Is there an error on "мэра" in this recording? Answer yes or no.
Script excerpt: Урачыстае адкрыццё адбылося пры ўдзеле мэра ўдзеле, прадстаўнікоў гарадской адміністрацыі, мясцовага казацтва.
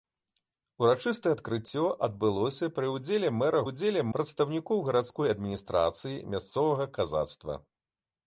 no